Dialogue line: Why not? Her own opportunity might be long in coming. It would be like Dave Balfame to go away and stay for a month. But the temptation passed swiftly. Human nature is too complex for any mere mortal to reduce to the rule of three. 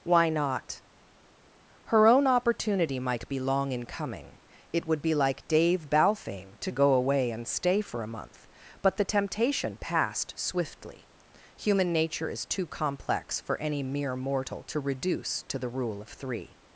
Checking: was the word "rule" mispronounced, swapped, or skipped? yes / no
no